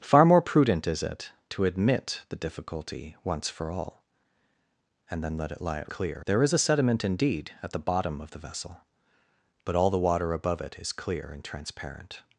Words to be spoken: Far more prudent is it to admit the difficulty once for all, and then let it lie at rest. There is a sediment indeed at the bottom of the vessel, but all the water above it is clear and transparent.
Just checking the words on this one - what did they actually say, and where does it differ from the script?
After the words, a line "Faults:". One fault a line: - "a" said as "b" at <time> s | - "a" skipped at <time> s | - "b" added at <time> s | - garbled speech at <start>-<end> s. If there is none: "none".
Far more prudent is it to admit the difficulty once for all, and then let it lie at clear. There is a sediment indeed at the bottom of the vessel, but all the water above it is clear and transparent.
Faults:
- "rest" said as "clear" at 5.9 s